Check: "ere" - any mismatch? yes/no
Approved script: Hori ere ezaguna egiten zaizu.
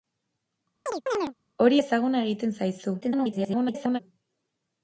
yes